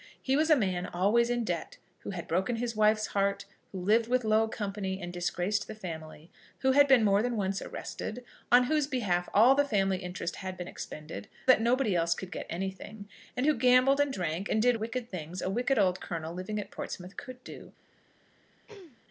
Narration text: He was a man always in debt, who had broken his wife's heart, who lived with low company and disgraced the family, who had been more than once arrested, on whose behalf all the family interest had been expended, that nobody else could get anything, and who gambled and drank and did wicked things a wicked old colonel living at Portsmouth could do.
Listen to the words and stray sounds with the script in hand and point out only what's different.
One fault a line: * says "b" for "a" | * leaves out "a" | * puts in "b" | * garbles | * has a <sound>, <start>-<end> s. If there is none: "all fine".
* has a throat clearing, 18.7-19.0 s